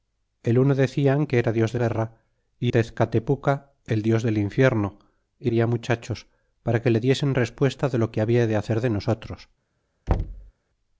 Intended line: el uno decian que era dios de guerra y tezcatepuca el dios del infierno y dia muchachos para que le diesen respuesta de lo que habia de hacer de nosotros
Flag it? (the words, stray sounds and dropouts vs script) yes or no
yes